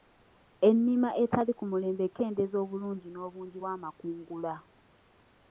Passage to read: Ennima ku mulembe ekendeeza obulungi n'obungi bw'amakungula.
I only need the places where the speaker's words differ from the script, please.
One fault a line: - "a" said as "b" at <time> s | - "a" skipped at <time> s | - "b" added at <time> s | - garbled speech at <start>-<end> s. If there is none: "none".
- "etali" added at 1.2 s